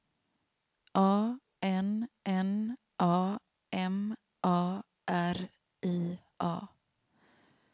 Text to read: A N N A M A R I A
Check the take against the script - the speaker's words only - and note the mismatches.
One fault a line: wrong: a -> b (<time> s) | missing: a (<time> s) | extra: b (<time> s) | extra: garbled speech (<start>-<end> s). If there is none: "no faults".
no faults